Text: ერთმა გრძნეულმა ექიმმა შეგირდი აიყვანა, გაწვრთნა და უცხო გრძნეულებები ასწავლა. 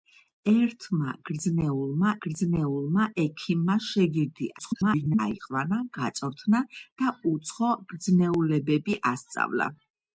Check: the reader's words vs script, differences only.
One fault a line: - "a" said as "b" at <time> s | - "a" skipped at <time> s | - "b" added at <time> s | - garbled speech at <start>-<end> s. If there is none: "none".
- "გრძნეულმა" added at 2.3 s
- garbled speech at 4.6-5.2 s